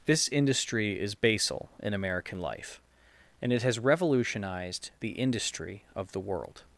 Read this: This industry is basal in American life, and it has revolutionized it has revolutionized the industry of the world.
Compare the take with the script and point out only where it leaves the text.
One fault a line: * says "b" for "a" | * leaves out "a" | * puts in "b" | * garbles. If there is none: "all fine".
* leaves out "it has revolutionized"